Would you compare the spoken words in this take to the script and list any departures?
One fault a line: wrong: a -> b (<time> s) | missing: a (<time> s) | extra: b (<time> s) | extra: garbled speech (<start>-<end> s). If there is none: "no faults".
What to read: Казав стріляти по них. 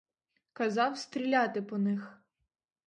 no faults